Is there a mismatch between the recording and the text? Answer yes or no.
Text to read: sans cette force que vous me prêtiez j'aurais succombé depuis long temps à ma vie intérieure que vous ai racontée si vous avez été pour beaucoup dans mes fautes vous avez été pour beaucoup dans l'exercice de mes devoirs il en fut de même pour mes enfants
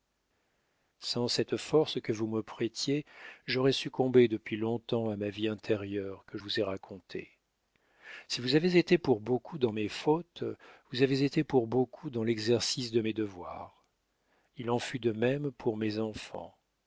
no